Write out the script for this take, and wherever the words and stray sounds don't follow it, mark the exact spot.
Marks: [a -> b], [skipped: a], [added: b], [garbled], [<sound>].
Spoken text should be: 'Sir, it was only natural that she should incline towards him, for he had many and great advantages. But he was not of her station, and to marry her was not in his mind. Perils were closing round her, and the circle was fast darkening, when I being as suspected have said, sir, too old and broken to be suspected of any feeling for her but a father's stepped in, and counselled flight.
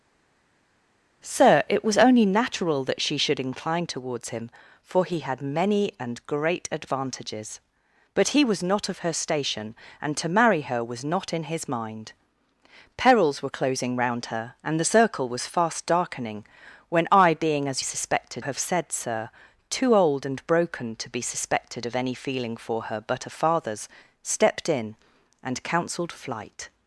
'Sir, it was only natural that she should incline towards him, for he had many and great advantages. But he was not of her station, and to marry her was not in his mind. Perils were closing round her, and the circle was fast darkening, when I being as suspected have said, sir, too old and broken to be suspected of any feeling for her but a father's stepped in, and counselled flight.